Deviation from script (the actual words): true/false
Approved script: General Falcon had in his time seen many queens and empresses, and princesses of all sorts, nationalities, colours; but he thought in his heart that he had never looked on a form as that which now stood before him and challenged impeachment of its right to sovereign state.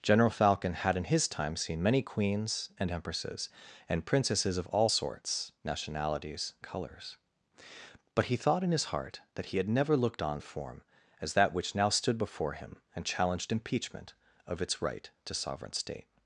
false